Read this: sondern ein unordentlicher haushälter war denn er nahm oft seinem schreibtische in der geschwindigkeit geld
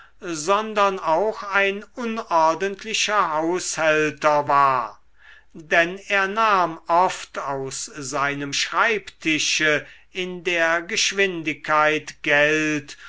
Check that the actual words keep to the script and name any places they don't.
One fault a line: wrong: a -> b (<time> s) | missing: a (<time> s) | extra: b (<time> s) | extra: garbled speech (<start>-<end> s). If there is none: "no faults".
extra: auch (1.0 s)
extra: aus (7.4 s)